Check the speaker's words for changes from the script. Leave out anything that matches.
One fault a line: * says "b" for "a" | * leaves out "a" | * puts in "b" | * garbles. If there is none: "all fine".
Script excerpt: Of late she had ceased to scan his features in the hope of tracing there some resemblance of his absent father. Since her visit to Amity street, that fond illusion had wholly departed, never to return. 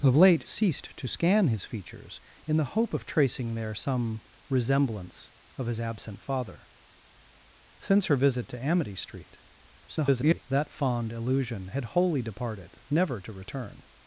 * leaves out "she had"
* garbles